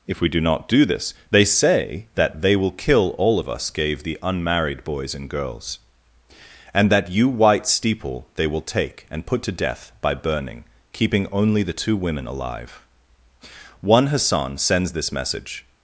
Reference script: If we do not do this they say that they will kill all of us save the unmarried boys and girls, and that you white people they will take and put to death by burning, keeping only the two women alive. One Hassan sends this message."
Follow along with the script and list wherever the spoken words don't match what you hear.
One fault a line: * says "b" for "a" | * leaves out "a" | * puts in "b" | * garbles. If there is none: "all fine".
* says "gave" for "save"
* says "steeple" for "people"